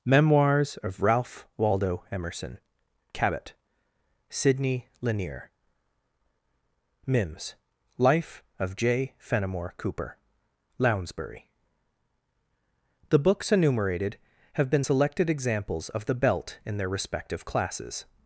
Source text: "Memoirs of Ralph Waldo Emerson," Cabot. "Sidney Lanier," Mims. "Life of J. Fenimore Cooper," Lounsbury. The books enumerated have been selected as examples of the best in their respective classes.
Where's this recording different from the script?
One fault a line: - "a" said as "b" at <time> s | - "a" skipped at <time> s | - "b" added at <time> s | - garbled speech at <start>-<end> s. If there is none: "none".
- "as" skipped at 15.3 s
- "best" said as "belt" at 16.1 s